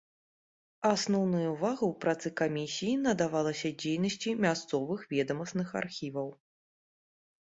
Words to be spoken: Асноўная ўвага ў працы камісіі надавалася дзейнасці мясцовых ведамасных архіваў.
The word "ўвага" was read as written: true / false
true